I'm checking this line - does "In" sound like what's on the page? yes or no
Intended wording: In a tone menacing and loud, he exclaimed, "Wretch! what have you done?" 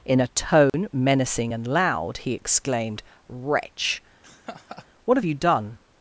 yes